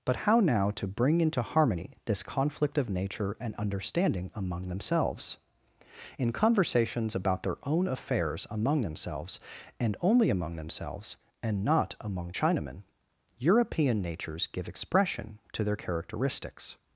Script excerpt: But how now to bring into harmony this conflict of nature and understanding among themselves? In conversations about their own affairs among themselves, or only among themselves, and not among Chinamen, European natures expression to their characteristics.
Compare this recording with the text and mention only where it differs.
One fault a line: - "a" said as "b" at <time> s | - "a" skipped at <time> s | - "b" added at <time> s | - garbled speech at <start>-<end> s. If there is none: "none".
- "or" said as "and" at 9.8 s
- "give" added at 14.5 s